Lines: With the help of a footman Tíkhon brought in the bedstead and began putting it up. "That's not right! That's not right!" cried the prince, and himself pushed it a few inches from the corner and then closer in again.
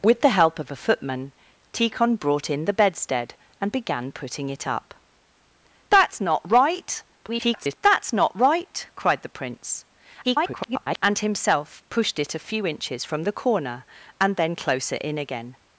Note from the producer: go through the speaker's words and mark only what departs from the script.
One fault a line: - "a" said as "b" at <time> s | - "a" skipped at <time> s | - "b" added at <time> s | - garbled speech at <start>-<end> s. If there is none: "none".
- garbled speech at 7.2-7.8 s
- garbled speech at 10.2-11.0 s